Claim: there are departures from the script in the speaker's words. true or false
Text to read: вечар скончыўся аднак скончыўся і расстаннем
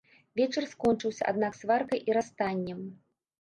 true